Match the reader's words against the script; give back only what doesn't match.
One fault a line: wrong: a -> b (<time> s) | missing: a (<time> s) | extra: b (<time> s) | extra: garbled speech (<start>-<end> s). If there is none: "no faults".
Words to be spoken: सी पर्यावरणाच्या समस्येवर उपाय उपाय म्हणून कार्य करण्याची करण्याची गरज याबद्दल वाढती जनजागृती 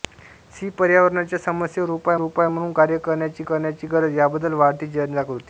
no faults